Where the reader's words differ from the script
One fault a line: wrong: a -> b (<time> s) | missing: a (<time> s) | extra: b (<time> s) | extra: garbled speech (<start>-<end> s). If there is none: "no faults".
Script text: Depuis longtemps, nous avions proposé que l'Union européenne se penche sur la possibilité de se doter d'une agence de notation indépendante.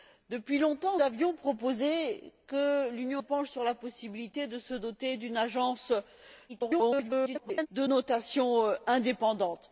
missing: nous (1.0 s)
missing: européenne se (3.2 s)
extra: garbled speech (6.5-7.7 s)